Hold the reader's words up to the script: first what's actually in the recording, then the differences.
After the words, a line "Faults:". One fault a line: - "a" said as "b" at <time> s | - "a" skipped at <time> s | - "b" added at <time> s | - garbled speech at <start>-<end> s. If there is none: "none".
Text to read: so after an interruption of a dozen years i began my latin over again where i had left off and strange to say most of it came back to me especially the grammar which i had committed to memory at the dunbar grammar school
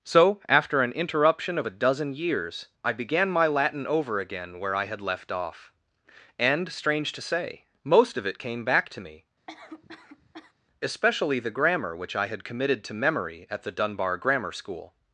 so after an interruption of a dozen years i began my latin over again where i had left off and strange to say most of it came back to me especially the grammar which i had committed to memory at the dunbar grammar school
Faults:
none